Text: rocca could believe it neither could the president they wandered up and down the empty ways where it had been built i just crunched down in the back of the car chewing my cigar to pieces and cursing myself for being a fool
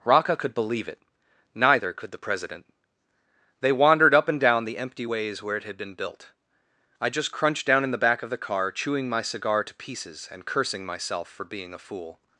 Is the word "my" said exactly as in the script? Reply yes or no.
yes